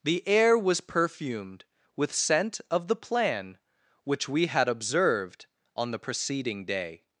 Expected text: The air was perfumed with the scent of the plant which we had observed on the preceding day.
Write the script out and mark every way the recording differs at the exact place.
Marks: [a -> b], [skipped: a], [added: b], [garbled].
The air was perfumed with [skipped: the] scent of the [plant -> plan] which we had observed on the preceding day.